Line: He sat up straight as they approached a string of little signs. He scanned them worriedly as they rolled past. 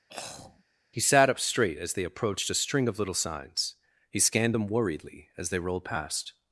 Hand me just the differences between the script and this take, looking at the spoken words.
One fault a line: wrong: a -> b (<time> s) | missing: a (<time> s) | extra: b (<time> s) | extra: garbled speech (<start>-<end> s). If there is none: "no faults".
no faults